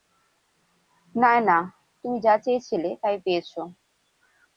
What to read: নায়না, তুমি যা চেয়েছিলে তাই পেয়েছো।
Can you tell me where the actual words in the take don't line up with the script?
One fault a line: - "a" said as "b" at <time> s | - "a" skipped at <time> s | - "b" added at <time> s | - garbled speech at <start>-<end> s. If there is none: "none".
none